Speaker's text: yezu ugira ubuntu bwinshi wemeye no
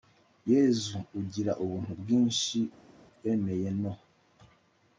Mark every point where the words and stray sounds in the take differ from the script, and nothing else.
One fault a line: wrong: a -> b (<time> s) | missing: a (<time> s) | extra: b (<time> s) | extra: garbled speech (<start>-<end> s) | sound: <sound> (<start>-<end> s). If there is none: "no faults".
no faults